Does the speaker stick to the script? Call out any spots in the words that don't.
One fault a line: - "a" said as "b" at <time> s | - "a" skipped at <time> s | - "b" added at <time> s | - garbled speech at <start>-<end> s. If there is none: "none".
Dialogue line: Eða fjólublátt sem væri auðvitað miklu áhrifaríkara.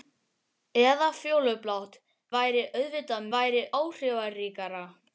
- "sem" skipped at 2.0 s
- "miklu" said as "væri" at 3.3 s